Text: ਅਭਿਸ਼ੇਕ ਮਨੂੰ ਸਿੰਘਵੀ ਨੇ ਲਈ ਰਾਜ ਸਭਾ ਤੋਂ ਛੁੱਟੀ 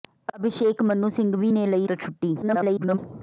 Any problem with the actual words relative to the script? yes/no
yes